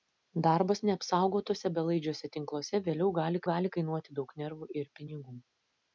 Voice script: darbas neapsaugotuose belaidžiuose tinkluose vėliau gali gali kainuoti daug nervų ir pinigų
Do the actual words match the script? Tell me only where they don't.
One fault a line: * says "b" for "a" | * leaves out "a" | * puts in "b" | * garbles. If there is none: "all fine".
all fine